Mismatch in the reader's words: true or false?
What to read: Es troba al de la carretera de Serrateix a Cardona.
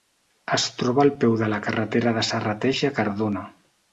true